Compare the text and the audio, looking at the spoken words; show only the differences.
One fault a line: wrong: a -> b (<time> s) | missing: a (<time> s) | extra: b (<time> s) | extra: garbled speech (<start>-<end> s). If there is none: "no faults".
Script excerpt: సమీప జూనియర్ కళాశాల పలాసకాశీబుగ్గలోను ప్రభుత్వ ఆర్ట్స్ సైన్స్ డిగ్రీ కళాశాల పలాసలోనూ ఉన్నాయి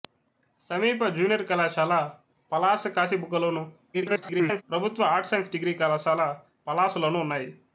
extra: garbled speech (3.9-4.6 s)